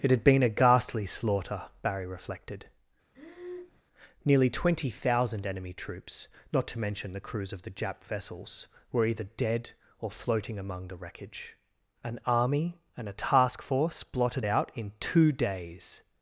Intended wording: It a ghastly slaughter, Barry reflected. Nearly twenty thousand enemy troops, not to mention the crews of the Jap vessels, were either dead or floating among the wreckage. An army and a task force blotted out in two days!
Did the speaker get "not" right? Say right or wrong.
right